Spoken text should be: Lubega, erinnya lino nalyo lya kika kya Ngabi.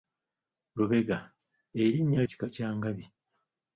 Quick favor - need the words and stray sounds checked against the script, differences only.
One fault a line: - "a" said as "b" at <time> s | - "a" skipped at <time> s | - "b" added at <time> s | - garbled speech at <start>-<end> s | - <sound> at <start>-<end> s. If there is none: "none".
- "lino nalyo lya" skipped at 2.2 s